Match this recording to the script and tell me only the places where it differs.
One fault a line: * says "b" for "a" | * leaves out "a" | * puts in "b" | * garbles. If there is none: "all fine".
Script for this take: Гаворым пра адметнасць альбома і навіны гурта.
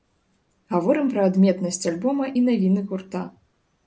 all fine